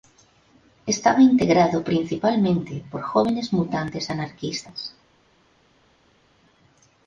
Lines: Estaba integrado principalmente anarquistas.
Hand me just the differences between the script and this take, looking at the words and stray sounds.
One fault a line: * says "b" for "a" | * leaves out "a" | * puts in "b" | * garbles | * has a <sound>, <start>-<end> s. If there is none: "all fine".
* puts in "por jóvenes mutantes"